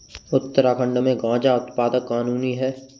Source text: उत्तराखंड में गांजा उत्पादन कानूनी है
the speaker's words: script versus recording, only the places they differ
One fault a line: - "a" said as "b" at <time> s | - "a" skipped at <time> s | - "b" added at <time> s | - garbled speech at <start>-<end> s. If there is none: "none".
none